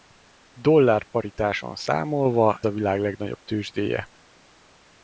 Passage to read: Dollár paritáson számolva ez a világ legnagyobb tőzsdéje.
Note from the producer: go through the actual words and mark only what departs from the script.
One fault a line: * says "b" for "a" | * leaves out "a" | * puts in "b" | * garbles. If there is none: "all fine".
* leaves out "ez"